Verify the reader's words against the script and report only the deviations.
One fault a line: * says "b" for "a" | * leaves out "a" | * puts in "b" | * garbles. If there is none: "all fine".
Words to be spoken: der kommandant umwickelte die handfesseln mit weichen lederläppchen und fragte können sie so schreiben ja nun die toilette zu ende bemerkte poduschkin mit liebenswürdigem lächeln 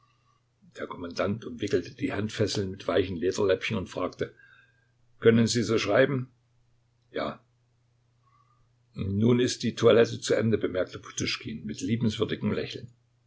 * puts in "ist"